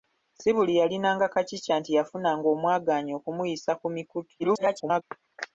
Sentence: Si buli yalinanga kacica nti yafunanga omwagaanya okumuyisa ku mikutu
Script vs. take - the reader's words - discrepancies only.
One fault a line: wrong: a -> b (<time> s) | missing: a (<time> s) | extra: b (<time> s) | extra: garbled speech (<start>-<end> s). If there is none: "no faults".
extra: garbled speech (4.4-5.0 s)